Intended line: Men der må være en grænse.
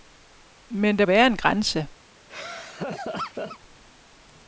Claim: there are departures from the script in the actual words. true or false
true